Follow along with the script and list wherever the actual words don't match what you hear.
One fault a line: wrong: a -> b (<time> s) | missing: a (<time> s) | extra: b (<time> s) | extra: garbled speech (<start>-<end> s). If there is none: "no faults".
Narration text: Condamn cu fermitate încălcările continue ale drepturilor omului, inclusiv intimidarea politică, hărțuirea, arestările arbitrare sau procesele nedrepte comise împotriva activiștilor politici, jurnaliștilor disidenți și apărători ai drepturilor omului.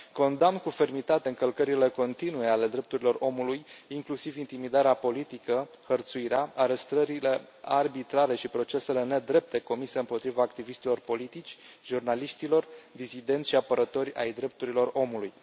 wrong: sau -> și (8.3 s)